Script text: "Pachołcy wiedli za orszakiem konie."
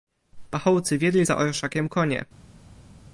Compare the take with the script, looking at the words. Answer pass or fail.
pass